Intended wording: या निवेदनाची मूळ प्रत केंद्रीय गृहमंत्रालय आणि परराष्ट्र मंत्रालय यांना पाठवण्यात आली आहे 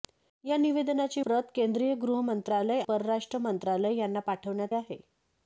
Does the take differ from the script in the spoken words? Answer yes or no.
yes